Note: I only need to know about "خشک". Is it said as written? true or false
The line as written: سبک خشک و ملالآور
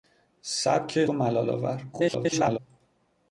false